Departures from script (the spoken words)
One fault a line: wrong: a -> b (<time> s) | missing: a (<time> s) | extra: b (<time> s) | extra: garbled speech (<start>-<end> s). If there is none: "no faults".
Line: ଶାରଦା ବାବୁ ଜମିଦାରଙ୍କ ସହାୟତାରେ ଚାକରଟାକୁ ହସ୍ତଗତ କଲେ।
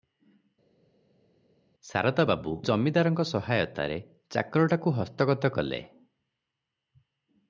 no faults